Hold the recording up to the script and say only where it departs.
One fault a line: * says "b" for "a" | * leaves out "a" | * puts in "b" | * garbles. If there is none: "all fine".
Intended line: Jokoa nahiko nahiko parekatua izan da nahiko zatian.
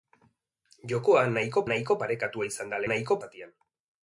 all fine